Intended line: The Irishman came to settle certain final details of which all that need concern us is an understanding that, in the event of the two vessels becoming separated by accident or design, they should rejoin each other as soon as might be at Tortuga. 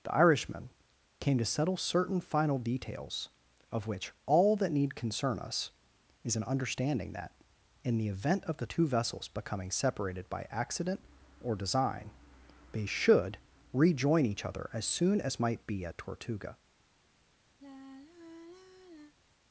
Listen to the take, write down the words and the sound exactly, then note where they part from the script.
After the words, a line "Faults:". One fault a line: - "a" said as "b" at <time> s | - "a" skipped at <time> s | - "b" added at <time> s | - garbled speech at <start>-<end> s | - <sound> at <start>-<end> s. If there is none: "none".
The Irishman came to settle certain final details of which all that need concern us is an understanding that, in the event of the two vessels becoming separated by accident or design, they should rejoin each other as soon as might be at Tortuga.
Faults:
- sigh at 17.6-19.1 s